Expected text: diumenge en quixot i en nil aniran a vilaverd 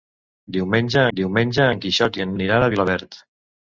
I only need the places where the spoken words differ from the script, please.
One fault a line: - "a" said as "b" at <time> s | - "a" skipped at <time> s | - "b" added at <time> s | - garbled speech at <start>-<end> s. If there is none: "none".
- "diumenge" added at 1.2 s
- "nil" skipped at 2.3 s